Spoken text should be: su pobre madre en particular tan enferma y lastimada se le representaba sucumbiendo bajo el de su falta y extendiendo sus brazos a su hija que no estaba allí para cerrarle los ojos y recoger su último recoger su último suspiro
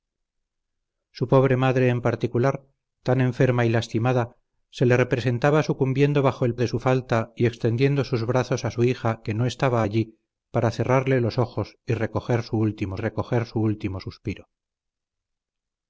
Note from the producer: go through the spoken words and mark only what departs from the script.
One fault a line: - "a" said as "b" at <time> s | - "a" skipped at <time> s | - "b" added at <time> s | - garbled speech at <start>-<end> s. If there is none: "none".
none